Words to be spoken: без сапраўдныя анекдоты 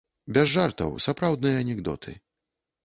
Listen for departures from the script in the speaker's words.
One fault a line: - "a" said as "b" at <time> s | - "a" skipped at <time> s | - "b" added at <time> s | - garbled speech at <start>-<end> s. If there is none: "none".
- "жартаў" added at 0.5 s